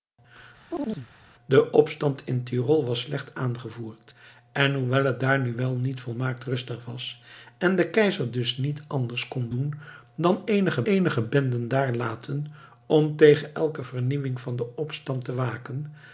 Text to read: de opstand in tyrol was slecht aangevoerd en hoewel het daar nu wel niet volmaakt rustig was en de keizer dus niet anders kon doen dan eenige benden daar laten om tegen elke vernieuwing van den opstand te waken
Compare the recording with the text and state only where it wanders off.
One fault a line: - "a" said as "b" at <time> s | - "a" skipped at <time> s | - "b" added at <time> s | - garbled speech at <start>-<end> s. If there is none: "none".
- "eenige" added at 10.8 s